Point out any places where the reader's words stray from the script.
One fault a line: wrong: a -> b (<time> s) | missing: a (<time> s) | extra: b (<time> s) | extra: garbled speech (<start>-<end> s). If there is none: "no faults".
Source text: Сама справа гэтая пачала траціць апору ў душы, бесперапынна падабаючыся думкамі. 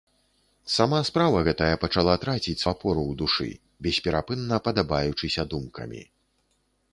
no faults